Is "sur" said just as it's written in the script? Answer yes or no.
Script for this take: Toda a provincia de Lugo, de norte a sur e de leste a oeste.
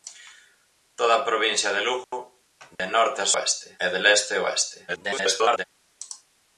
no